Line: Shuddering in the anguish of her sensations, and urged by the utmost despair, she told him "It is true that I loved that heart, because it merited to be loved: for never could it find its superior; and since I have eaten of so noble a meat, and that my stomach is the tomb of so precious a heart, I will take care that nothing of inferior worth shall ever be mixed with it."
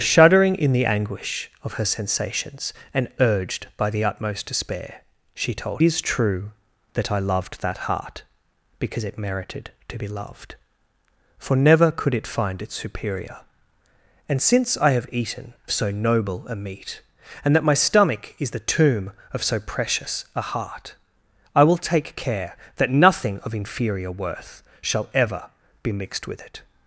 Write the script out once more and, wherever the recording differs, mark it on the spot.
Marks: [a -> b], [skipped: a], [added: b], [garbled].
Shuddering in the anguish of her sensations, and urged by the utmost despair, she told [skipped: him "It] is true that I loved that heart, because it merited to be loved: for never could it find its superior; and since I have eaten [skipped: of] so noble a meat, and that my stomach is the tomb of so precious a heart, I will take care that nothing of inferior worth shall ever be mixed with it."